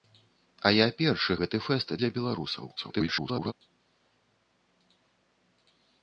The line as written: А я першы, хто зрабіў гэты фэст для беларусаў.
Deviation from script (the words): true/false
true